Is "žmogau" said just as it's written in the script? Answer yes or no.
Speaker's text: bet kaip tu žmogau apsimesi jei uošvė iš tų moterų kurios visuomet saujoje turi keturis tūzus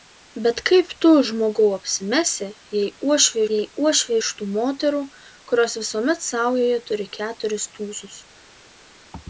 yes